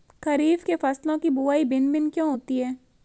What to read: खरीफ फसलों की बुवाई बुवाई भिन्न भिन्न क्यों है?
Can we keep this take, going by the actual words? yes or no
no